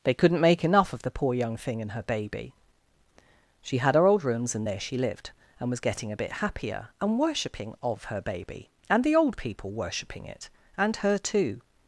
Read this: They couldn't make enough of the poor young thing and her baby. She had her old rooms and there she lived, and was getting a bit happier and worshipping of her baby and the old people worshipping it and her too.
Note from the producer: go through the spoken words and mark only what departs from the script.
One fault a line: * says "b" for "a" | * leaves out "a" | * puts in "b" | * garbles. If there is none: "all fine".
all fine